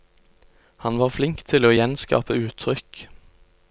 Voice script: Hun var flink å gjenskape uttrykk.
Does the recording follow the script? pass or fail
fail